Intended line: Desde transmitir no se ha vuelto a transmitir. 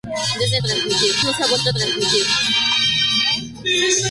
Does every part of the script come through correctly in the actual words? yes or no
yes